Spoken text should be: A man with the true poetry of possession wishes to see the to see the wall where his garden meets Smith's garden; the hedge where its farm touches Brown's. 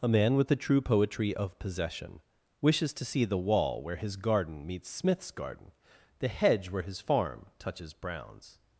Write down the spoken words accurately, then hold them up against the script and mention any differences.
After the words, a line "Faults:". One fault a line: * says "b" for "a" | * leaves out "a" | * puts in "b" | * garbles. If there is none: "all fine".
A man with the true poetry of possession wishes to see the wall where his garden meets Smith's garden; the hedge where his farm touches Brown's.
Faults:
* leaves out "to see the"
* says "his" for "its"